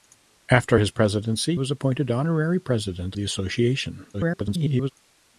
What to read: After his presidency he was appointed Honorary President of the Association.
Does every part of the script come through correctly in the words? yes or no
no